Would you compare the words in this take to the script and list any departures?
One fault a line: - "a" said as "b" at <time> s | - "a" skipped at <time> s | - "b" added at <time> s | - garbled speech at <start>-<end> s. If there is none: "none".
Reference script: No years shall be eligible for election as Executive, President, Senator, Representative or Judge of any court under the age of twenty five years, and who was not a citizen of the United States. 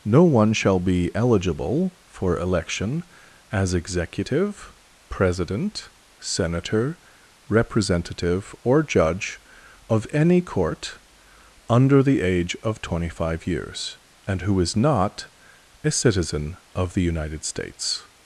- "years" said as "one" at 0.2 s
- "was" said as "is" at 14.6 s